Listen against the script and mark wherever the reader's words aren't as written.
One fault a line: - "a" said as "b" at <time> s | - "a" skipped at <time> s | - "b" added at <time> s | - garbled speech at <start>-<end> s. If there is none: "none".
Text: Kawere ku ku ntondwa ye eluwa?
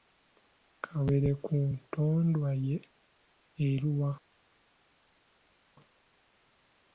- "ku" skipped at 1.6 s